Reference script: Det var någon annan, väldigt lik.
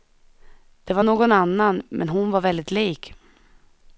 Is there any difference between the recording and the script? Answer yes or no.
yes